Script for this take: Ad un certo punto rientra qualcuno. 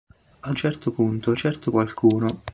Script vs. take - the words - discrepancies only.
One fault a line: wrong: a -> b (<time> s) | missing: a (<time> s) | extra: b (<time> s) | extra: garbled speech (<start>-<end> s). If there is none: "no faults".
missing: un (0.6 s)
wrong: rientra -> certo (1.3 s)